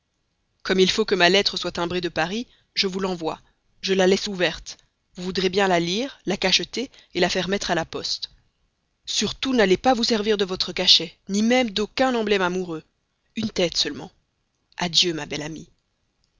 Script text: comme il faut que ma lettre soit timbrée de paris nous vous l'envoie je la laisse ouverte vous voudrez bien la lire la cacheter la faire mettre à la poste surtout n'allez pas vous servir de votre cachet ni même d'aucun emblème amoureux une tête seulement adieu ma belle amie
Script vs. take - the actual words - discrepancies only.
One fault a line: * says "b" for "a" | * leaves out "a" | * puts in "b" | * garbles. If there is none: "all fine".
* says "je" for "nous"